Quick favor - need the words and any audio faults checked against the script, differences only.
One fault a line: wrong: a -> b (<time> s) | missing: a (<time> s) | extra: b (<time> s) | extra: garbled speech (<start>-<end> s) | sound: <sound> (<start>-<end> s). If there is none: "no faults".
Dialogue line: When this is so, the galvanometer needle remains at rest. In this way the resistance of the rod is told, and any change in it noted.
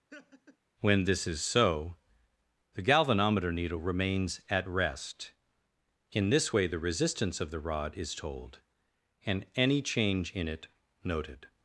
sound: laugh (0.1-0.6 s)